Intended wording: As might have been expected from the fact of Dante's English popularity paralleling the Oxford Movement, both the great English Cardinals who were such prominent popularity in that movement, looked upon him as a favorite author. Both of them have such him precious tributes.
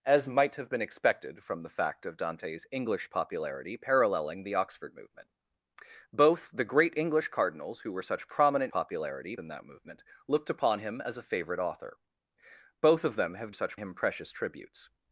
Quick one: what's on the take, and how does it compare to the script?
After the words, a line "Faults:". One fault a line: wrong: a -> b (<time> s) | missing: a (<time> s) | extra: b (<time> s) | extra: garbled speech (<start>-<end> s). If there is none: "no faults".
As might have been expected from the fact of Dante's English popularity paralleling the Oxford Movement, both the great English Cardinals who were such prominent popularity in that movement, looked upon him as a favorite author. Both of them have such him precious tributes.
Faults:
no faults